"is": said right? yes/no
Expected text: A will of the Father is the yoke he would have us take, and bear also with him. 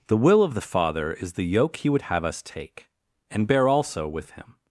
yes